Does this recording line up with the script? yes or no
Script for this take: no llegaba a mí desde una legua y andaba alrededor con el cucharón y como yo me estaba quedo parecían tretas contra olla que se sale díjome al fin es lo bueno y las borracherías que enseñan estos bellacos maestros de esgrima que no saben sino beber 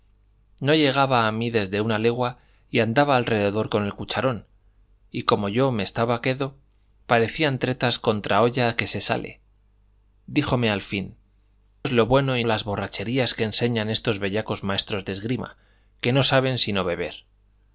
yes